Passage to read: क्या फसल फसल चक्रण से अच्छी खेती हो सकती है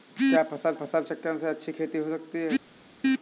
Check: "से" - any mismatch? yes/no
no